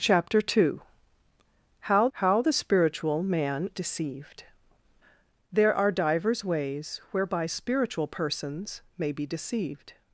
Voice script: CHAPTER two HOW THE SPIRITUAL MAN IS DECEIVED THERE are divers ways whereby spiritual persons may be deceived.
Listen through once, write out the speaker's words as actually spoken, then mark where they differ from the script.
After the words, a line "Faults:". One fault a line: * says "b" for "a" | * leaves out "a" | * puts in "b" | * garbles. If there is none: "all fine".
CHAPTER two HOW HOW THE SPIRITUAL MAN DECEIVED THERE are divers ways whereby spiritual persons may be deceived.
Faults:
* puts in "HOW"
* leaves out "IS"